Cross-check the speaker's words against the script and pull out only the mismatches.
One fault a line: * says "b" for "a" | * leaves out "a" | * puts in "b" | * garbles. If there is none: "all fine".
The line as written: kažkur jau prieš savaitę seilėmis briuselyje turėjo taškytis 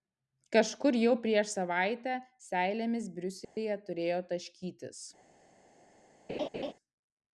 all fine